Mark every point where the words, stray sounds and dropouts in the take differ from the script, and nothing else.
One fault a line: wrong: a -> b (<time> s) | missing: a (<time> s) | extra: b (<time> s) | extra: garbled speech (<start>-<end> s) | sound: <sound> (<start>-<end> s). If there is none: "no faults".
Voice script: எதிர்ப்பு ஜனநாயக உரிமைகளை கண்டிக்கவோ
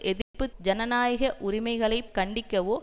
sound: dropout (0.2-0.3 s)